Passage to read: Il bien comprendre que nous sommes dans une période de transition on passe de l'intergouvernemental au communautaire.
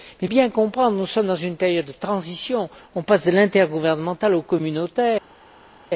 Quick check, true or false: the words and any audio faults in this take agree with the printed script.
true